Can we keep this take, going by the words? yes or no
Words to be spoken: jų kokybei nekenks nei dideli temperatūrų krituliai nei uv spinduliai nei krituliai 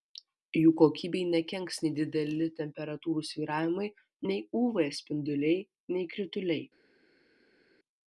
no